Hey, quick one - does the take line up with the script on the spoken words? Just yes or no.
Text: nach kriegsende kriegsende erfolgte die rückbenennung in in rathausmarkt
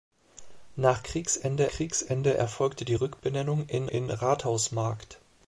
yes